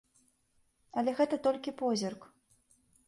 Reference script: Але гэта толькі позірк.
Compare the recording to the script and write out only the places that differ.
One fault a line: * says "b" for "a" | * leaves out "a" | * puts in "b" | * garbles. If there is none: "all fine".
all fine